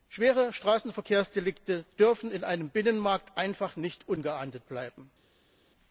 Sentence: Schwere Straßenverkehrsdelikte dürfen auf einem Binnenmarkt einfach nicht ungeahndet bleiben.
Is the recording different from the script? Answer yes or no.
yes